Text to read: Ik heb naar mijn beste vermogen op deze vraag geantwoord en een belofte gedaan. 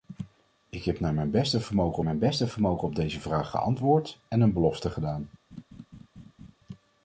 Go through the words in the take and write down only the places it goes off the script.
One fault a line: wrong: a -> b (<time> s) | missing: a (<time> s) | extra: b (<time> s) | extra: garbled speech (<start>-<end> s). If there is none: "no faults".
extra: mijn beste vermogen (2.0 s)